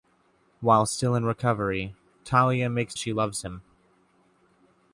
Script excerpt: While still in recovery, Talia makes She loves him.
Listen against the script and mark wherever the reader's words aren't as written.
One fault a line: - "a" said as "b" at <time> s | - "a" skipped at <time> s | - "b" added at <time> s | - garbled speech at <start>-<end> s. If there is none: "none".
none